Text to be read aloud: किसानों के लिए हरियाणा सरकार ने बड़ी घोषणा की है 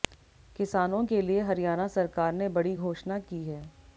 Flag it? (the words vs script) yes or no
no